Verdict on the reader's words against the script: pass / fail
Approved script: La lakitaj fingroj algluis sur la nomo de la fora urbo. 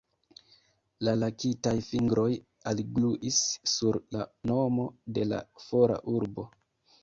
pass